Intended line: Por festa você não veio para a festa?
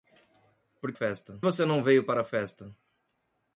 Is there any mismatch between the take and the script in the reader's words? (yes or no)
no